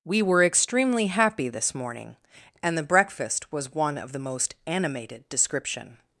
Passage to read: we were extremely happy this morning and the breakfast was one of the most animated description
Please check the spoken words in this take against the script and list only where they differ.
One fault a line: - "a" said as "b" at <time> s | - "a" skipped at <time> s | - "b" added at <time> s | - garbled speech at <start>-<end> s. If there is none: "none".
none